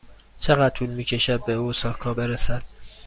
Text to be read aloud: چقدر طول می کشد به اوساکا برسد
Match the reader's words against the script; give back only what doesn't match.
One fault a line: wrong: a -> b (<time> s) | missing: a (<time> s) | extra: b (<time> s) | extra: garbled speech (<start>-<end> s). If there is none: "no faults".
no faults